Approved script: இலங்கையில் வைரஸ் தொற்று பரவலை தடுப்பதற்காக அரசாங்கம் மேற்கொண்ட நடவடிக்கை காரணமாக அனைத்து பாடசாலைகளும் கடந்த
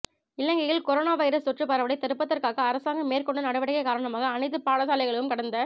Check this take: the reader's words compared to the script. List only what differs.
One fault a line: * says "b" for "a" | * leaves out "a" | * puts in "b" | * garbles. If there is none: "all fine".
* puts in "கொரோனா"